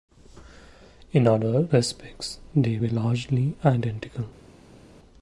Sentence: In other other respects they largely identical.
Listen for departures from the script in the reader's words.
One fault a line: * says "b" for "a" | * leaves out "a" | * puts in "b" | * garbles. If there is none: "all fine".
* leaves out "other"
* puts in "were"